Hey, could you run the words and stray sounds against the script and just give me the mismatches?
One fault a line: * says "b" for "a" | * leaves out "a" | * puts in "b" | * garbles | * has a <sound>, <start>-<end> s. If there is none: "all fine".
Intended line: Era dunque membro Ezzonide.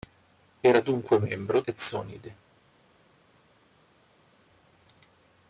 all fine